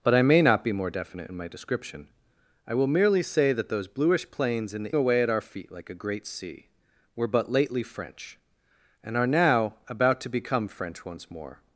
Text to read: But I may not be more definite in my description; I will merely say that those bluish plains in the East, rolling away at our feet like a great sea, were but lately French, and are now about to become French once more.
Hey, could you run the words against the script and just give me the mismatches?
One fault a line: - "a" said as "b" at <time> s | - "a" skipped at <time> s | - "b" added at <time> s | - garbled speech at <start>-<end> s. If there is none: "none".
- "East rolling" skipped at 5.0 s